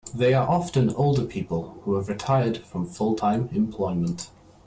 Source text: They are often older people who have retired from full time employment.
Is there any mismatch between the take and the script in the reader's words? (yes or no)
no